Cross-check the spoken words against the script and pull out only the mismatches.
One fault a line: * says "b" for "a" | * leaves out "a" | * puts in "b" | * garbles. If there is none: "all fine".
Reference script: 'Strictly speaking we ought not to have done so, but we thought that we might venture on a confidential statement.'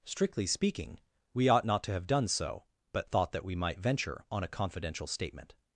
* leaves out "we"